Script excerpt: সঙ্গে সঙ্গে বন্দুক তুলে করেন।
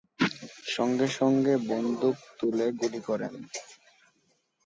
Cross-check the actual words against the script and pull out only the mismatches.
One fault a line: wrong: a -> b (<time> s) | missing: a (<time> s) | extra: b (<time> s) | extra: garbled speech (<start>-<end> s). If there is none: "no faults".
extra: গুলি (2.8 s)